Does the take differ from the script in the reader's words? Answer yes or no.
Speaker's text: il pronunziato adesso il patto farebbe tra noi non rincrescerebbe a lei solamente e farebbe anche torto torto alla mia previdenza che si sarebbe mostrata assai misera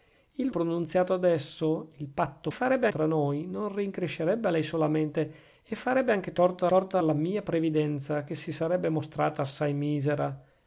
no